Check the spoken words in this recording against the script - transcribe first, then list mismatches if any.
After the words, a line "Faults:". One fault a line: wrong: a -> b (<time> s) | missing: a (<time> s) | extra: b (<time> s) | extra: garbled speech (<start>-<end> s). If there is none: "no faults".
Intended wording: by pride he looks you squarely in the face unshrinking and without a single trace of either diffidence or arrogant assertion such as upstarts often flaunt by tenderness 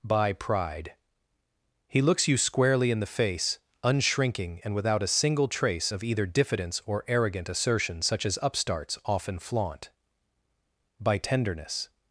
by pride he looks you squarely in the face unshrinking and without a single trace of either diffidence or arrogant assertion such as upstarts often flaunt by tenderness
Faults:
no faults